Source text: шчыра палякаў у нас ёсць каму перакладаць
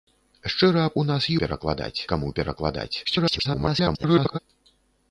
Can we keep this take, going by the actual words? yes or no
no